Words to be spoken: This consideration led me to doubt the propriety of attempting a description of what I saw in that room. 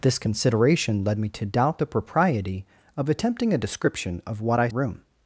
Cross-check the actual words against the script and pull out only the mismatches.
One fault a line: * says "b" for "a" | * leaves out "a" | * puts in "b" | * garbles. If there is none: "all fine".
* leaves out "saw in that"